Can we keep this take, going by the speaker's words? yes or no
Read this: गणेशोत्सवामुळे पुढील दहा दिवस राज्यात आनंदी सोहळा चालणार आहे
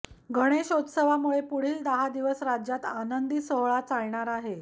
yes